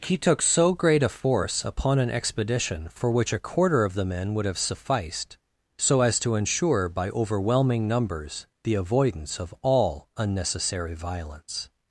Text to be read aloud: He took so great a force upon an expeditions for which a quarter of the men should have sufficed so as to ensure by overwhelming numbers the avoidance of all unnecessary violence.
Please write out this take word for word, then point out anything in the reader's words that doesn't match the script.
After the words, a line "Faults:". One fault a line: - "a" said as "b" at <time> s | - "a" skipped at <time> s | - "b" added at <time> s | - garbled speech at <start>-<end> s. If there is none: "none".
He took so great a force upon an expedition for which a quarter of the men would have sufficed so as to ensure by overwhelming numbers the avoidance of all unnecessary violence.
Faults:
- "expeditions" said as "expedition" at 2.1 s
- "should" said as "would" at 4.3 s